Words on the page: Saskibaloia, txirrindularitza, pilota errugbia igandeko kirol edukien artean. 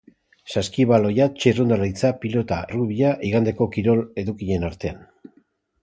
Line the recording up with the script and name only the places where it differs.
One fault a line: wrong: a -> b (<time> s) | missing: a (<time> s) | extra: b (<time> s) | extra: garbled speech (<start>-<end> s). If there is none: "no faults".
no faults